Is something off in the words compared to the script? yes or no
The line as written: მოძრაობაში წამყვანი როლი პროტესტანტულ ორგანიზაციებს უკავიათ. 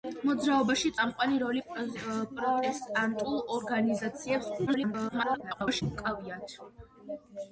yes